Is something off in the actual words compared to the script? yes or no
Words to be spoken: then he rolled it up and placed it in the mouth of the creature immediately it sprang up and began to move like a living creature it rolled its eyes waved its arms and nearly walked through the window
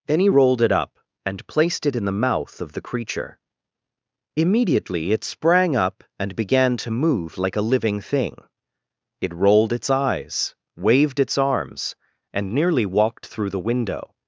yes